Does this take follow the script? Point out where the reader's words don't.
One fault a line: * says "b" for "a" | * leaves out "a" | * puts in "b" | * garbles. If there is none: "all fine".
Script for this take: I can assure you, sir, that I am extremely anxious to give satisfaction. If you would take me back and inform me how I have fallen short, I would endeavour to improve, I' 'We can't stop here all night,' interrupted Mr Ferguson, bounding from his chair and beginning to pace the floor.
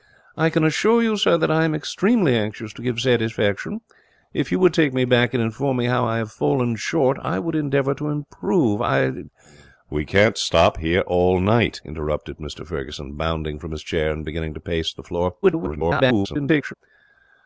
* garbles